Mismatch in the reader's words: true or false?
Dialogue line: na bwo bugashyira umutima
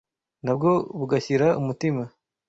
false